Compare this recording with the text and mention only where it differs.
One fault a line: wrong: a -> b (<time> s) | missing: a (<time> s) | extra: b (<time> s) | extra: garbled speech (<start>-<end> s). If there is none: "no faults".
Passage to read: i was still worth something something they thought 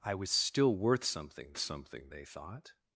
no faults